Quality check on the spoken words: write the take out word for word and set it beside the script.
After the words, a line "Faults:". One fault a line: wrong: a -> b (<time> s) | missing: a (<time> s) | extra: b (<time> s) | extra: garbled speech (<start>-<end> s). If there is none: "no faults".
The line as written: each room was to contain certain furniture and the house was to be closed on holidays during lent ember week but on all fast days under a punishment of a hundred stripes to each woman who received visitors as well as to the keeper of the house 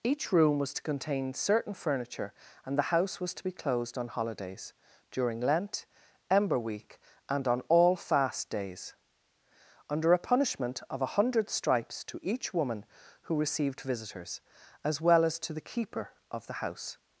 each room was to contain certain furniture and the house was to be closed on holidays during lent ember week and on all fast days under a punishment of a hundred stripes to each woman who received visitors as well as to the keeper of the house
Faults:
wrong: but -> and (7.3 s)